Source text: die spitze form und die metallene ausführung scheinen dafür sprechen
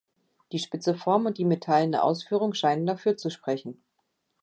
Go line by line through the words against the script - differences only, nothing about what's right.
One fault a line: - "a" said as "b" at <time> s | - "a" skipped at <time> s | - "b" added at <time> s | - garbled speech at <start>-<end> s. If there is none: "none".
- "zu" added at 3.2 s